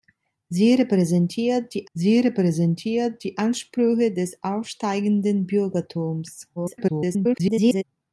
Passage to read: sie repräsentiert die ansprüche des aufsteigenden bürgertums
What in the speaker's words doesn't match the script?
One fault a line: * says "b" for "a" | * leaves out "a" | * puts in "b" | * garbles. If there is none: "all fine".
* puts in "sie repräsentiert die"
* garbles